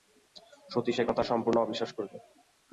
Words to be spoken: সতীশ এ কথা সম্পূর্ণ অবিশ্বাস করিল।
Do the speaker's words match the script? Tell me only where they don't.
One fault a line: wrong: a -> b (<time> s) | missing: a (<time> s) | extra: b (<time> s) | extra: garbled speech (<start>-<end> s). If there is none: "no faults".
no faults